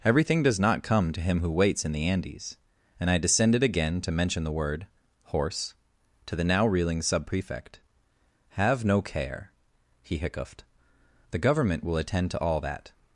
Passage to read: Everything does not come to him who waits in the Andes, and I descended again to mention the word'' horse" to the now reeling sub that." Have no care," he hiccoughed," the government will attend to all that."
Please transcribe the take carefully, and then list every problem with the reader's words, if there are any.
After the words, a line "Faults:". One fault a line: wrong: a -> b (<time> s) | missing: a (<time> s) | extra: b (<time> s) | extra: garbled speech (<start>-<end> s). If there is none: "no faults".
Everything does not come to him who waits in the Andes, and I descended again to mention the word'' horse" to the now reeling sub prefect." Have no care," he hiccoughed," the government will attend to all that."
Faults:
wrong: that -> prefect (7.3 s)